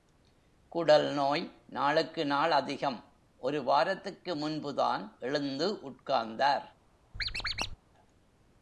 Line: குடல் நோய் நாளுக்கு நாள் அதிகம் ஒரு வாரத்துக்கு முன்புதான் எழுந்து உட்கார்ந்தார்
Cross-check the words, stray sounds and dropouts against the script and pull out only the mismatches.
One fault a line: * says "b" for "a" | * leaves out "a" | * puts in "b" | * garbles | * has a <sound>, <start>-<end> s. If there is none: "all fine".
* has a squeak, 7.1-7.8 s